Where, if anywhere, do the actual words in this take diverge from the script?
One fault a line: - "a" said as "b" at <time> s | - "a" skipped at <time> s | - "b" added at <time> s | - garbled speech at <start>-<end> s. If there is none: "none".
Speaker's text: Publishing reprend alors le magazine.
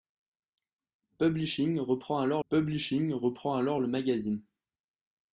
- "publishing reprend alors" added at 2.5 s